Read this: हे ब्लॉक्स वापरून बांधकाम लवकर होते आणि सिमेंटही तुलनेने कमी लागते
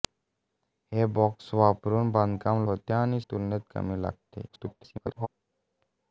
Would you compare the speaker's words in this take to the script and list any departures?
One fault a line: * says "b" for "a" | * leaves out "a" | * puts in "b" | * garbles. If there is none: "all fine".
* leaves out "लवकर"
* leaves out "सिमेंटही"
* garbles